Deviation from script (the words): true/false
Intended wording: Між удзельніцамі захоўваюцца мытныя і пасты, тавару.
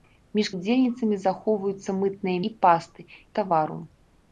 false